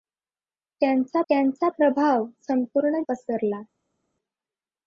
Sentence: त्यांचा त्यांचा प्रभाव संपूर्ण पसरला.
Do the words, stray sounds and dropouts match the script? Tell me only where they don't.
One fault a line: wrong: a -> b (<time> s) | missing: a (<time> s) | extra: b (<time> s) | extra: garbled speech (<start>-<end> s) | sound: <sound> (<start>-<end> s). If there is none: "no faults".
no faults